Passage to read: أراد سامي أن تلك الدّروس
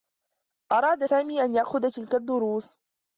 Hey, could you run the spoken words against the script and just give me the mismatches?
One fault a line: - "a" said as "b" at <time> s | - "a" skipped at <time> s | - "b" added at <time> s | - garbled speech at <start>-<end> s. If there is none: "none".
- "يأخذ" added at 1.5 s